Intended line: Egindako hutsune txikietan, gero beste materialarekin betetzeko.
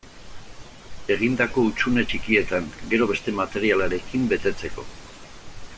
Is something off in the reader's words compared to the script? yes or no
no